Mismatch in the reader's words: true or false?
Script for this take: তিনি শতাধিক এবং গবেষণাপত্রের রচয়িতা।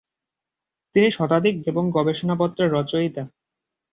false